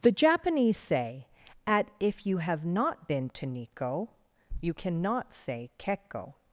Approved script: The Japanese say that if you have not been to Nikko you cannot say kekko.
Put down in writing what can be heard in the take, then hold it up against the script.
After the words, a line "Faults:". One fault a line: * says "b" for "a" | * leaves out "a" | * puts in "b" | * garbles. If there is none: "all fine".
The Japanese say at if you have not been to Nikko you cannot say kekko.
Faults:
* says "at" for "that"